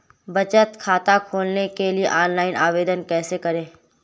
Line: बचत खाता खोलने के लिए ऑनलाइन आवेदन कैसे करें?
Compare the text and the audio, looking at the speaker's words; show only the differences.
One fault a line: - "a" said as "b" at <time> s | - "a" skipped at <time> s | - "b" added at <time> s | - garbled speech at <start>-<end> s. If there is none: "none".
none